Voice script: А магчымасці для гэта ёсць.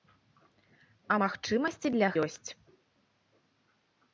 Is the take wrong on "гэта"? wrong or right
wrong